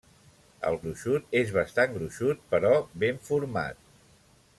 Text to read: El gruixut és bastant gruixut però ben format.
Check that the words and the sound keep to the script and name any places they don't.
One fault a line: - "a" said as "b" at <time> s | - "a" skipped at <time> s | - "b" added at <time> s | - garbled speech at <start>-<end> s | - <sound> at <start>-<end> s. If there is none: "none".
none